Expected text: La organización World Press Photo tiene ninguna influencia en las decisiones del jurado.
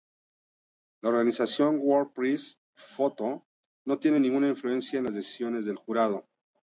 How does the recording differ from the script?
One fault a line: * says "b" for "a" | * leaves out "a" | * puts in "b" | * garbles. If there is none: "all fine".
* puts in "no"